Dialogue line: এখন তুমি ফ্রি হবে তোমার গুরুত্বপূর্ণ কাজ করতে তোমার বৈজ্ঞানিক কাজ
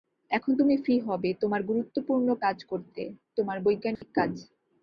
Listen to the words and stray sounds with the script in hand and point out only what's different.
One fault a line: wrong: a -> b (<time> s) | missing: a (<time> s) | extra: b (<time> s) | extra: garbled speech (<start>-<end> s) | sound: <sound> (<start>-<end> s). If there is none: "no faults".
sound: dropout (4.0-4.0 s)